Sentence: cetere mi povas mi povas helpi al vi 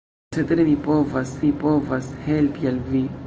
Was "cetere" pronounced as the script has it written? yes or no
yes